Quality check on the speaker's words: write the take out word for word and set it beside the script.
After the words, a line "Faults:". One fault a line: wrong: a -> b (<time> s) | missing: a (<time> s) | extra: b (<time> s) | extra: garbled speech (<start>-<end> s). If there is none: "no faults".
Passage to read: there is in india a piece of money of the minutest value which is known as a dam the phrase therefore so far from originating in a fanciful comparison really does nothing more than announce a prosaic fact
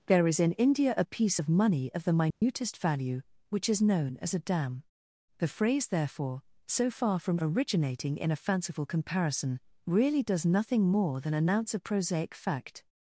there is in india a piece of money of the minutest value which is known as a dam the phrase therefore so far from originating in a fanciful comparison really does nothing more than announce a prosaic fact
Faults:
no faults